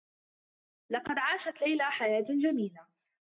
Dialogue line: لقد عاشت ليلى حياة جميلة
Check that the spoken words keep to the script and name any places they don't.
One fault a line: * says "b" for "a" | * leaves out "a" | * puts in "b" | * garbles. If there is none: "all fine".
all fine